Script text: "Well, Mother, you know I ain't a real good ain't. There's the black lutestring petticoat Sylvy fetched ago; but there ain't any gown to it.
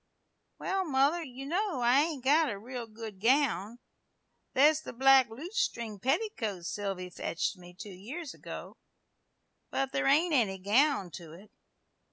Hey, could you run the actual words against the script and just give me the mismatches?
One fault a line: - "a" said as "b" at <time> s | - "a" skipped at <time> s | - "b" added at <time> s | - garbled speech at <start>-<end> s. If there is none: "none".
- "got" added at 2.2 s
- "ain't" said as "gown" at 3.2 s
- "me two years" added at 7.6 s